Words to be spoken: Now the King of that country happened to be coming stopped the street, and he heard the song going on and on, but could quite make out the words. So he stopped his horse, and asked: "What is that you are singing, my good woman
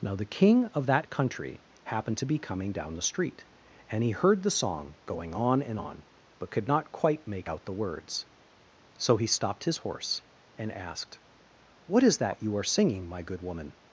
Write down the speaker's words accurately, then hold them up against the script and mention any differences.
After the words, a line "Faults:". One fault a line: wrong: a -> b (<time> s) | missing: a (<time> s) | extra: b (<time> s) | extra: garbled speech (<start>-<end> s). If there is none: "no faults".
Now the King of that country happened to be coming down the street, and he heard the song going on and on, but could not quite make out the words. So he stopped his horse, and asked: "What is that you are singing, my good woman
Faults:
wrong: stopped -> down (2.7 s)
extra: not (6.7 s)